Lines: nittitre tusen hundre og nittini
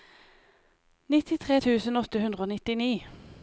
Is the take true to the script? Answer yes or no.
no